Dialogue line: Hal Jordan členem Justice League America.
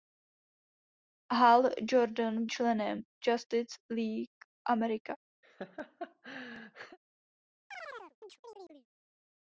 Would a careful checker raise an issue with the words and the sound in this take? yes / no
yes